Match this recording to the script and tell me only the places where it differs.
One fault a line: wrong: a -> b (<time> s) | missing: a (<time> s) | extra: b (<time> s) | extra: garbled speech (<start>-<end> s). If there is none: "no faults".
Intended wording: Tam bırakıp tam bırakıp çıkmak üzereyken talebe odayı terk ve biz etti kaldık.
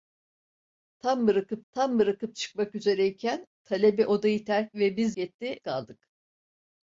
no faults